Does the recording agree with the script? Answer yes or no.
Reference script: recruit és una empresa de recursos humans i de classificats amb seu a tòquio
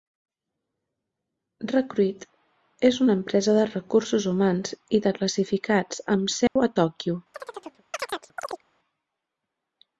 yes